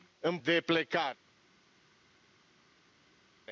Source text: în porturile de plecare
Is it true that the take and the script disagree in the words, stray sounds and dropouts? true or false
true